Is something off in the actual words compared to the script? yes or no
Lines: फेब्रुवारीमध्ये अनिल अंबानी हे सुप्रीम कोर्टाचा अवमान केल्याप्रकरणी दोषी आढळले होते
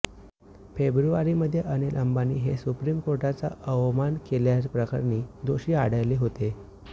no